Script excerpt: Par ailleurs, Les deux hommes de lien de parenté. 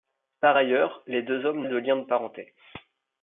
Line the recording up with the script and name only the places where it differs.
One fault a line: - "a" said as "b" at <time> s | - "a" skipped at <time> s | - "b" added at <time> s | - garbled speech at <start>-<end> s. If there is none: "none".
none